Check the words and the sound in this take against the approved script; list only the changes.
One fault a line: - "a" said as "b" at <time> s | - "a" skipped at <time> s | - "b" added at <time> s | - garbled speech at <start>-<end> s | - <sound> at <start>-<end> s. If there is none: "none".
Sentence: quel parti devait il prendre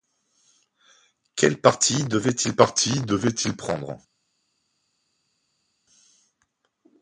- "parti devait il" added at 2.6 s